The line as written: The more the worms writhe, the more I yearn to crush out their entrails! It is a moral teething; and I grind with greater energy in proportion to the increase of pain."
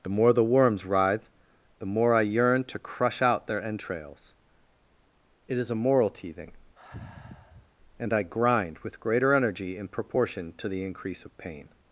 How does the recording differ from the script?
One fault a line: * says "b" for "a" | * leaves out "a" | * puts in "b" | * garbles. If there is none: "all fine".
all fine